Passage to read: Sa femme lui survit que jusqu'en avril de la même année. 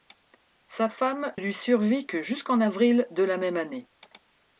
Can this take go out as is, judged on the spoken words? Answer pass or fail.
pass